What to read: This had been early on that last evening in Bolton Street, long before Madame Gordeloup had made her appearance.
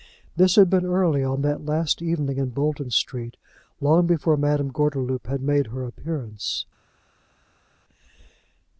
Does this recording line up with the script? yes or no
yes